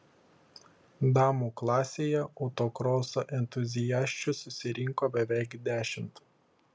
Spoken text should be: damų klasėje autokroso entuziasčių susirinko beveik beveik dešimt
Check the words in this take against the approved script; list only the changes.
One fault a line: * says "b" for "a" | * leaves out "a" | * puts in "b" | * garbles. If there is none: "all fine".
* leaves out "beveik"